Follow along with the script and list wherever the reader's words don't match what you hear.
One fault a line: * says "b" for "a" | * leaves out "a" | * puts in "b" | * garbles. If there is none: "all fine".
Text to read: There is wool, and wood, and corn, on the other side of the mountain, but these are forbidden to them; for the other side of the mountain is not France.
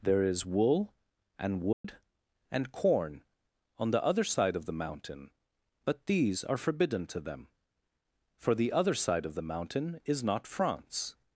all fine